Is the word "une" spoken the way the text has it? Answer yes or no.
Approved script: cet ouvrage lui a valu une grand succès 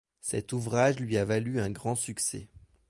no